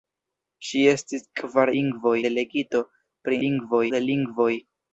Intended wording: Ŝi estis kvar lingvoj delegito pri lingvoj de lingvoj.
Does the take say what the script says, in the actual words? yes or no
yes